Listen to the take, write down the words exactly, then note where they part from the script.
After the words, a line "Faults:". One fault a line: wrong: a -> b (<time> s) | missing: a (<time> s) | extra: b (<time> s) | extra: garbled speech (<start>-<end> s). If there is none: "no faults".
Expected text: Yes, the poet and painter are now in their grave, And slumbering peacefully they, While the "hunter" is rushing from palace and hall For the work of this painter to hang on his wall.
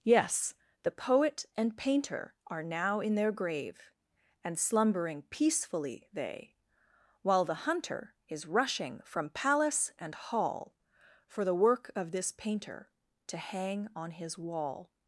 Yes, the poet and painter are now in their grave, And slumbering peacefully they, While the "hunter" is rushing from palace and hall For the work of this painter to hang on his wall.
Faults:
no faults